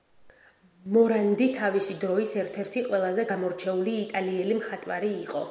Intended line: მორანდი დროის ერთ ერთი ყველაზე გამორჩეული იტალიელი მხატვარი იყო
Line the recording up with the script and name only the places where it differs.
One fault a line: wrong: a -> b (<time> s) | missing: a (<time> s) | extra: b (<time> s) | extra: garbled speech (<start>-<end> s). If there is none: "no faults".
extra: თავისი (1.6 s)